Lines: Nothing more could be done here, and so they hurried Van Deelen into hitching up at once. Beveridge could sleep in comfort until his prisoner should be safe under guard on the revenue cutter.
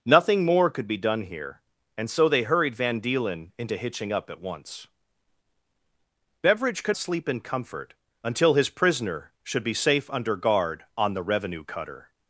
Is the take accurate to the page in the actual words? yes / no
yes